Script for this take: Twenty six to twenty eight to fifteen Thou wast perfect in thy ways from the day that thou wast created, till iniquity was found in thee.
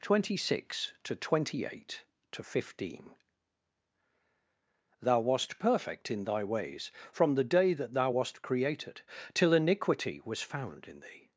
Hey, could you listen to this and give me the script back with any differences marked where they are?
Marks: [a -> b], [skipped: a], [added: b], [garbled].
Twenty six to twenty eight to fifteen Thou wast perfect in thy ways from the day that thou wast created, till iniquity was found in thee.